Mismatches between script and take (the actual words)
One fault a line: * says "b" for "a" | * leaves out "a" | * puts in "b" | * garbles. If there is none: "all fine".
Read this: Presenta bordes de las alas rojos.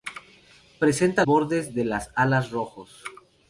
all fine